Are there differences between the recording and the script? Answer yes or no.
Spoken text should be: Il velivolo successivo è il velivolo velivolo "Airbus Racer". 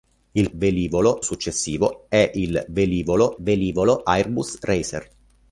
no